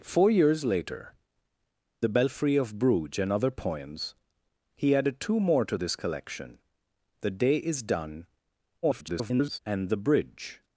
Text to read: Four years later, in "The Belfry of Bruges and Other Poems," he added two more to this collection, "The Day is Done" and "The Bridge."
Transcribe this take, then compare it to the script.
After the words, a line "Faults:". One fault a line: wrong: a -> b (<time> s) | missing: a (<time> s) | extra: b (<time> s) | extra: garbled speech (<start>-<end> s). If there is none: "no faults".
Four years later, "The Belfry of Bruges and Other Poems," he added two more to this collection, "The Day is Done" [garbled] and "The Bridge."
Faults:
missing: in (1.1 s)
extra: garbled speech (8.8-9.6 s)